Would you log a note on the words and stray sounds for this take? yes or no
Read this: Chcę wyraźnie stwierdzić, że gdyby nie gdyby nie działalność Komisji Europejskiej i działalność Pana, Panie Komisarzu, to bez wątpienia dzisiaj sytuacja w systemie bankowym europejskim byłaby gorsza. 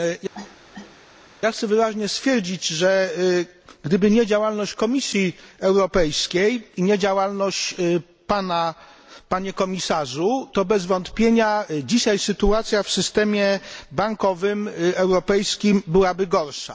yes